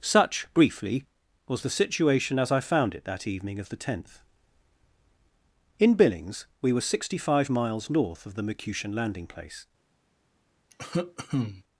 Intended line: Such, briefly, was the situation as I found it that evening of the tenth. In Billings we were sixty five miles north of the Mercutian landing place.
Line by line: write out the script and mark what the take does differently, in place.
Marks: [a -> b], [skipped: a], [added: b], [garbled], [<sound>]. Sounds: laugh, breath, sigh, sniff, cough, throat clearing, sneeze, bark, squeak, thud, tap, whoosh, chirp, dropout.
Such, briefly, was the situation as I found it that evening of the tenth. In Billings we were sixty five miles north of the Mercutian landing place. [cough]